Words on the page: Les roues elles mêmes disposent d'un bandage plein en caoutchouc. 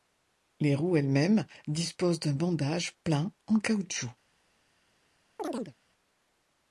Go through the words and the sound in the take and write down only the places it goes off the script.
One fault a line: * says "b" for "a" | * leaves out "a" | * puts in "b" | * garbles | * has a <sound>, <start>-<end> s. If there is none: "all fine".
* has a chirp, 5.4-5.7 s